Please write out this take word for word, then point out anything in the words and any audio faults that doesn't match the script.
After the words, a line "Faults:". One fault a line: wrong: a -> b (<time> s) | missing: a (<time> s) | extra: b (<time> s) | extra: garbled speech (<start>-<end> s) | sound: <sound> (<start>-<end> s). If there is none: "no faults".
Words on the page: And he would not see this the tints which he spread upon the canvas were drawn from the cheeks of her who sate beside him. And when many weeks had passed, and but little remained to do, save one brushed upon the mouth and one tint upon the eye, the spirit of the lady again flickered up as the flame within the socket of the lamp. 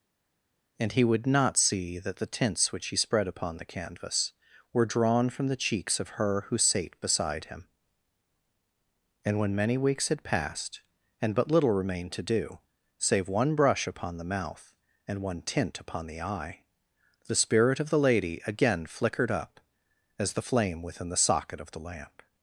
And he would not see that the tints which he spread upon the canvas were drawn from the cheeks of her who sate beside him. And when many weeks had passed, and but little remained to do, save one brush upon the mouth and one tint upon the eye, the spirit of the lady again flickered up as the flame within the socket of the lamp.
Faults:
wrong: this -> that (2.0 s)
wrong: brushed -> brush (13.6 s)